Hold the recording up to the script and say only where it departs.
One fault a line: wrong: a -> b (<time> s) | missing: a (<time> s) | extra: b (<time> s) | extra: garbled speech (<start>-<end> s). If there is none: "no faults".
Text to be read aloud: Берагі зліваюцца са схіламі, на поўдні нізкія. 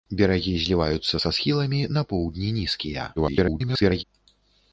extra: garbled speech (3.2-4.0 s)